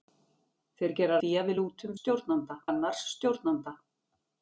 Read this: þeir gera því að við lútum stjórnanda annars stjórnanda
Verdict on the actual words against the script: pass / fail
pass